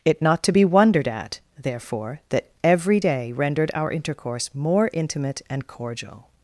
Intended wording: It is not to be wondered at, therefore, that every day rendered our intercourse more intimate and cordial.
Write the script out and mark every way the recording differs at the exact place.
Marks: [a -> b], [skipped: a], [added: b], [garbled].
It [skipped: is] not to be wondered at, therefore, that every day rendered our intercourse more intimate and cordial.